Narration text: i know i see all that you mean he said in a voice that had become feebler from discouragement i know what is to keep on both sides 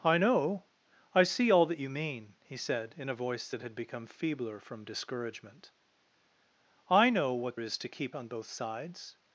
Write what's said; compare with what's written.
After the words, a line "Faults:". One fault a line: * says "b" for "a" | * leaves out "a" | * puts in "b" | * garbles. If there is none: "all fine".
i know i see all that you mean he said in a voice that had become feebler from discouragement i know what is to keep on both sides
Faults:
all fine